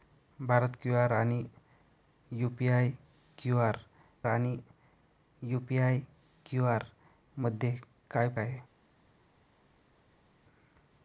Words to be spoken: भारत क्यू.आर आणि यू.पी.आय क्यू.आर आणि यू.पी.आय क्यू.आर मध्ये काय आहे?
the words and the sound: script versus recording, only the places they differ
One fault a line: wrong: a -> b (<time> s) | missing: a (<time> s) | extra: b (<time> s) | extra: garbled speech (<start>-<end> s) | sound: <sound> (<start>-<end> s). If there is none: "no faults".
no faults